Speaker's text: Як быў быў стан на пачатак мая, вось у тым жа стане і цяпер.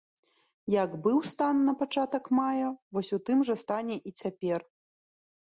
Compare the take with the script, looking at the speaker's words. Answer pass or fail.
fail